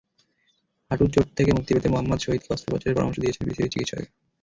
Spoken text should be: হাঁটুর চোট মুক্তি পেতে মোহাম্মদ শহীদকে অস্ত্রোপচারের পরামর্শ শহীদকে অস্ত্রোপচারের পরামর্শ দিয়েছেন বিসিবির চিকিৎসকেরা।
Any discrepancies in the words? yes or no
yes